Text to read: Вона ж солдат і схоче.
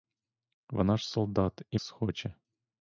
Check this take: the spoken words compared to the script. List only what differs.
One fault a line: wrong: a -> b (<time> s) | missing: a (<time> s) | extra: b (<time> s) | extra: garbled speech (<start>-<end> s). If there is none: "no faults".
no faults